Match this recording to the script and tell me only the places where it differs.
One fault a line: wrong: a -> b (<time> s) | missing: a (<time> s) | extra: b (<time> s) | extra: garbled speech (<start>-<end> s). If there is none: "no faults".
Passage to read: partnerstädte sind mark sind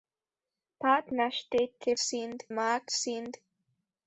no faults